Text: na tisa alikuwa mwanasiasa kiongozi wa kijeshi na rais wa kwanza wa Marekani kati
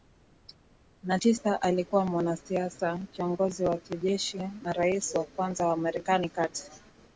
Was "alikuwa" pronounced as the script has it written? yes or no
yes